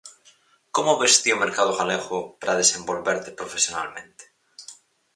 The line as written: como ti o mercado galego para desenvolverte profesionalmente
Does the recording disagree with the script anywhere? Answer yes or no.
yes